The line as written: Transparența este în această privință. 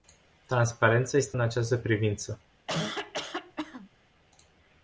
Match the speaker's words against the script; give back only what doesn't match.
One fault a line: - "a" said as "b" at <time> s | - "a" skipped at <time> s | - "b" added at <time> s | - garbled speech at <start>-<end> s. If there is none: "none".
none